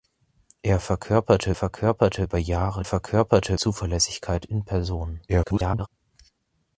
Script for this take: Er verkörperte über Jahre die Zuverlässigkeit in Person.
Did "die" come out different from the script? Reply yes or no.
yes